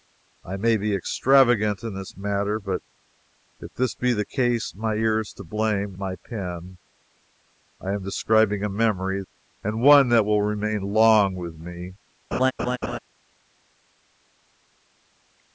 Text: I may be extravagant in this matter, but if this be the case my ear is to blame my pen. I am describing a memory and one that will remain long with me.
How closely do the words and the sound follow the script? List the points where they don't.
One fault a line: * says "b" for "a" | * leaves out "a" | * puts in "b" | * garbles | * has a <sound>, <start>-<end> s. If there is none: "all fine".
* has a laugh, 12.3-13.0 s